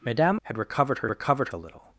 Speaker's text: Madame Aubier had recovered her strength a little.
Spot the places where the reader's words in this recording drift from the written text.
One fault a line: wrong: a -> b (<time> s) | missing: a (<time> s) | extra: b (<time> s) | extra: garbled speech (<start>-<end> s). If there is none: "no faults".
missing: Aubier (0.4 s)
wrong: strength -> recovered (1.1 s)